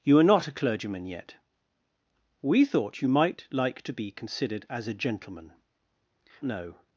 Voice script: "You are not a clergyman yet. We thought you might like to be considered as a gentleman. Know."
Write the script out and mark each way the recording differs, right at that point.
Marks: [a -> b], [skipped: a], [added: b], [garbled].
"You are not a clergyman yet. We thought you might like to be considered as a gentleman. Know."